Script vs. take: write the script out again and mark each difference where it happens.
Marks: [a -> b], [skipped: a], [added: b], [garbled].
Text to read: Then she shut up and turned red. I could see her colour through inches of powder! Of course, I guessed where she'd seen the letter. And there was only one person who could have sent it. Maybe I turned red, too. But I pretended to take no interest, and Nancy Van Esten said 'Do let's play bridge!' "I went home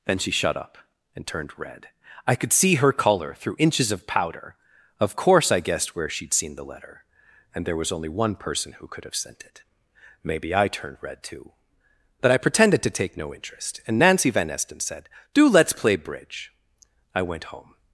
Then she shut up and turned red. I could see her colour through inches of powder! Of course, I guessed where she'd seen the letter. And there was only one person who could have sent it. Maybe I turned red, too. But I pretended to take no interest, and Nancy Van Esten said 'Do let's play bridge!' "I went home